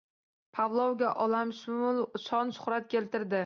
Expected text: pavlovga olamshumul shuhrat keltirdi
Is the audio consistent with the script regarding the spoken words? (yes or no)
no